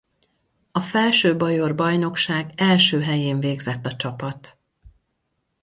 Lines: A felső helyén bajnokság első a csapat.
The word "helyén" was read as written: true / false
false